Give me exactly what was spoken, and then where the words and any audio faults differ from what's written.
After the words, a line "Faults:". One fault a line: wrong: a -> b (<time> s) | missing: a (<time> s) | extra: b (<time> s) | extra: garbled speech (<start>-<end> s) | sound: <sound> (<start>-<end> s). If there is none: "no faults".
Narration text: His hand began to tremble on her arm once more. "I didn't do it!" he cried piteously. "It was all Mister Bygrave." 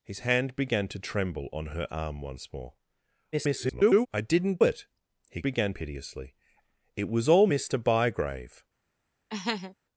His hand began to tremble on her arm once more. [garbled] "I didn't it!" he began piteously. "It was all Mister Bygrave."
Faults:
extra: garbled speech (3.3-4.1 s)
missing: do (4.6 s)
wrong: cried -> began (5.4 s)
sound: laugh (9.3-9.8 s)